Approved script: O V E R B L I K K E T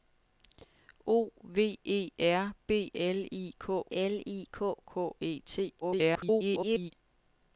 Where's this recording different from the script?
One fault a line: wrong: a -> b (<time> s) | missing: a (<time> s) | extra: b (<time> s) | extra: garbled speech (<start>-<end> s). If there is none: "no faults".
extra: L I K (3.9 s)
extra: garbled speech (5.8-6.9 s)